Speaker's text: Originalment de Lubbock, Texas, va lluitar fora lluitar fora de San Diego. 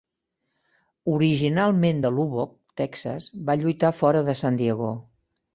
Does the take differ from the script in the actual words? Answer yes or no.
yes